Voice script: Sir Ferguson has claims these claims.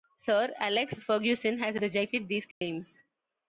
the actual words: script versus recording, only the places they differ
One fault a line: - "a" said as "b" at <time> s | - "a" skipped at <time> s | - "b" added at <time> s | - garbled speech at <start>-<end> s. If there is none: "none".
- "Alex" added at 0.6 s
- "claims" said as "rejected" at 1.8 s